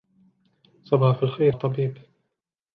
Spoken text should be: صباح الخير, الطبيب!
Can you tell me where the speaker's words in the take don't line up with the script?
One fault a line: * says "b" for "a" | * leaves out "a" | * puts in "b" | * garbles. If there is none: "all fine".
all fine